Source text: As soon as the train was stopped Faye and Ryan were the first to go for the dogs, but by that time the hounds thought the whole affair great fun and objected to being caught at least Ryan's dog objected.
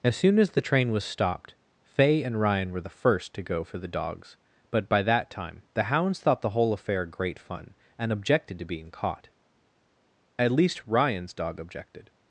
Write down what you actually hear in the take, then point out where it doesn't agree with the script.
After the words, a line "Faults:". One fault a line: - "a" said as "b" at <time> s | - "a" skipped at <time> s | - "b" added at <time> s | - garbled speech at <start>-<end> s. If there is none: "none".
As soon as the train was stopped Faye and Ryan were the first to go for the dogs, but by that time the hounds thought the whole affair great fun and objected to being caught at least Ryan's dog objected.
Faults:
none